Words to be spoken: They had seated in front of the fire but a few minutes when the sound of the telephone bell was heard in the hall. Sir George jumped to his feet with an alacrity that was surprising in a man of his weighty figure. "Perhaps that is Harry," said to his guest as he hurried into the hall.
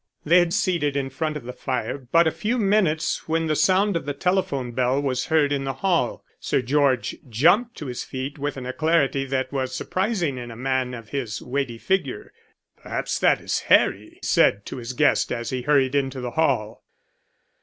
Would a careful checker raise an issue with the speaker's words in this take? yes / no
no